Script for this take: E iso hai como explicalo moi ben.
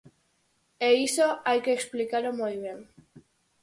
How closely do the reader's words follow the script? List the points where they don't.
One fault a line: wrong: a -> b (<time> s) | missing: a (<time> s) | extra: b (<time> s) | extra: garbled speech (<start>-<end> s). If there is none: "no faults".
wrong: como -> que (1.6 s)